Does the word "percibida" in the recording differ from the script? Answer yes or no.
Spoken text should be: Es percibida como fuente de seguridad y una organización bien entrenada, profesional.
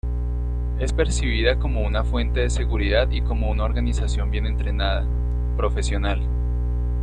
no